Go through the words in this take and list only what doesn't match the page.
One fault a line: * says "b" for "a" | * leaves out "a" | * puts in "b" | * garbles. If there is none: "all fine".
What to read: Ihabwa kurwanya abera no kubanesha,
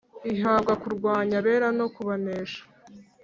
all fine